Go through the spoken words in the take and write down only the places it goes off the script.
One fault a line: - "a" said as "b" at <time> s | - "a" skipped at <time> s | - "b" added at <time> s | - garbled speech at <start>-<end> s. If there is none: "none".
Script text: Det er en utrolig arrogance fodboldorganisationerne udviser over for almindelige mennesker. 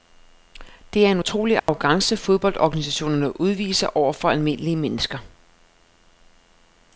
none